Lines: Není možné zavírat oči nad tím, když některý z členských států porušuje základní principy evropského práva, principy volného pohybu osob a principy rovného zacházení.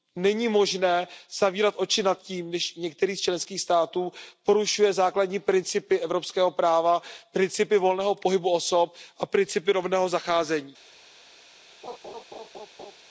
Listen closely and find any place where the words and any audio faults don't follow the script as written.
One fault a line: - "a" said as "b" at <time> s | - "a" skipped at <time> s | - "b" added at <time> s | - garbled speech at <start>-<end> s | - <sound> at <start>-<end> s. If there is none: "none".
- laugh at 11.8-13.0 s